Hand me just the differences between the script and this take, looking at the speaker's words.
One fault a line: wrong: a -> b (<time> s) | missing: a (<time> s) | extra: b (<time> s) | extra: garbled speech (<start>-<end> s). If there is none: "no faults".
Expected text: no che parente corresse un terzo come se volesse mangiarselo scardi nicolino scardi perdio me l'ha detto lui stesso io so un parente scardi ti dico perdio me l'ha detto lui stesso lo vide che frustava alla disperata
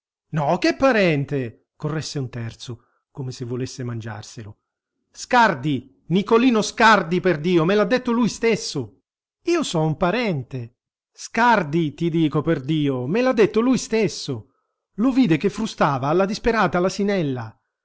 no faults